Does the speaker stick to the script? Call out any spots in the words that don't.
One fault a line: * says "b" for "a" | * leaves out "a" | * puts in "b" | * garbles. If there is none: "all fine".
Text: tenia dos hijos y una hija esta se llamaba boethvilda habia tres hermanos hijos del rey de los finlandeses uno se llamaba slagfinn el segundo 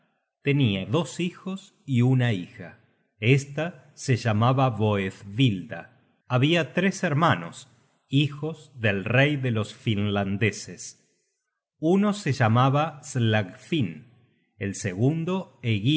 all fine